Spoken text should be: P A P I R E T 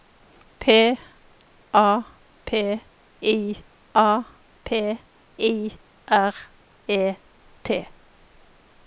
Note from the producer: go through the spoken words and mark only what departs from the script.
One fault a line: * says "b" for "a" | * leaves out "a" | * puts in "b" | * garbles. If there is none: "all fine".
* puts in "A P I"